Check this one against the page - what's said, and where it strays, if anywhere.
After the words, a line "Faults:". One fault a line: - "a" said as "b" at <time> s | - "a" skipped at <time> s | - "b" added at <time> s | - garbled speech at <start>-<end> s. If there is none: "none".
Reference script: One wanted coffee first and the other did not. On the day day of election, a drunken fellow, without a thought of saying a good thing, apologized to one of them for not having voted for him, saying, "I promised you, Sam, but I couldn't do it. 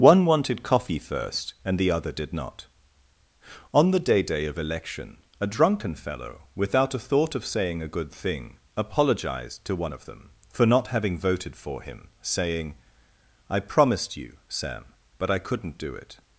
One wanted coffee first and the other did not. On the day day of election, a drunken fellow, without a thought of saying a good thing, apologized to one of them for not having voted for him, saying, "I promised you, Sam, but I couldn't do it.
Faults:
none